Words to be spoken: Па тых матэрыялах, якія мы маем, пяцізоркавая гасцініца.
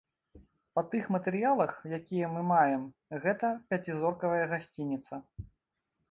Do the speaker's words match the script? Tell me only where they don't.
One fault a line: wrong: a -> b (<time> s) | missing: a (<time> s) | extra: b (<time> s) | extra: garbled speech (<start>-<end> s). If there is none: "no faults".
extra: гэта (3.2 s)